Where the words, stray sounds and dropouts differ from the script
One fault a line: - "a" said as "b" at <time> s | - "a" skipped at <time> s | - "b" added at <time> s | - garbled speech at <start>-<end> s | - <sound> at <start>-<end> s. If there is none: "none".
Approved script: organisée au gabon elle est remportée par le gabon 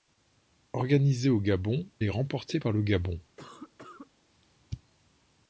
- "elle" skipped at 1.9 s
- cough at 3.4-4.1 s